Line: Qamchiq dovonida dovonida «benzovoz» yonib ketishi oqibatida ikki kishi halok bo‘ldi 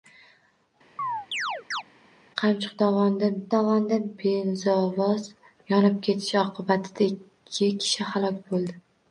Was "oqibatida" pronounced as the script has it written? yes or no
yes